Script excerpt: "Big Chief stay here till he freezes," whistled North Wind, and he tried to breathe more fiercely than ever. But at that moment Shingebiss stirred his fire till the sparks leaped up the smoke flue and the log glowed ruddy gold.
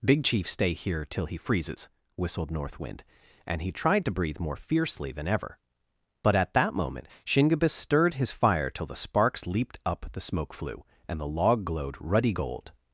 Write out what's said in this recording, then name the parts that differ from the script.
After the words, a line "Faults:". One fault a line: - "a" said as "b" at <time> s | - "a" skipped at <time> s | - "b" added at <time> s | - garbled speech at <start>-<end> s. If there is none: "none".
"Big Chief stay here till he freezes," whistled North Wind, and he tried to breathe more fiercely than ever. But at that moment Shingebiss stirred his fire till the sparks leaped up the smoke flue and the log glowed ruddy gold.
Faults:
none